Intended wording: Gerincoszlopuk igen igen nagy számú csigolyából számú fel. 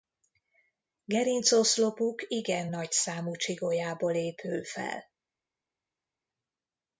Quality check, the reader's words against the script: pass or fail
fail